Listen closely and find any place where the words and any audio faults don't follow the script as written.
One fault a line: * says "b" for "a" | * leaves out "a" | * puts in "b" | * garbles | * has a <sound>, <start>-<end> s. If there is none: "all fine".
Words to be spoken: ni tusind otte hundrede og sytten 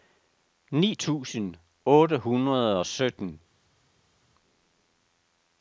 all fine